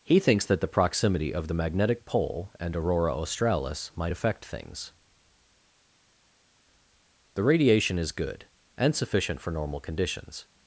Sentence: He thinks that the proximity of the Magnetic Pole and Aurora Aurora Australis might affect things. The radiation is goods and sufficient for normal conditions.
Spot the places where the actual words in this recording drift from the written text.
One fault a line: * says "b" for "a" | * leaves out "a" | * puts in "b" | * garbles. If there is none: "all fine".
* leaves out "Aurora"
* says "good" for "goods"